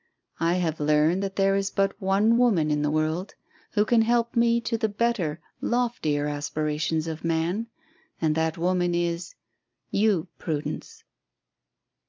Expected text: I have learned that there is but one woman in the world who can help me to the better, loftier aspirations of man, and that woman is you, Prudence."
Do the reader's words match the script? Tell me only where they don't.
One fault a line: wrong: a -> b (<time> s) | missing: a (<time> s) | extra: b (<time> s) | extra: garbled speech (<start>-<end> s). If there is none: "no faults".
no faults